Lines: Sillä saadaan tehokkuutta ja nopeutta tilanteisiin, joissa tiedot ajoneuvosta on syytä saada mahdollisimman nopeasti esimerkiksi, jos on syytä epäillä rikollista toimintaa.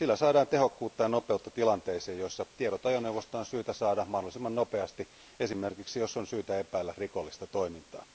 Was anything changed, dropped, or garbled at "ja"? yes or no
no